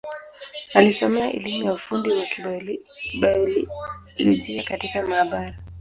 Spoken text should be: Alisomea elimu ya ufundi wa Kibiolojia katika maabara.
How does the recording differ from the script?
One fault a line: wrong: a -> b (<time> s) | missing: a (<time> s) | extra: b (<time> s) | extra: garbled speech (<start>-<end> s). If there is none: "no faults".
no faults